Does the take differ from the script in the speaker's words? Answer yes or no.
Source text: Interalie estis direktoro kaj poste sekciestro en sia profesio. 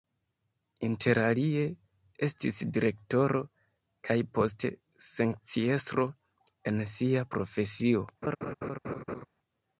no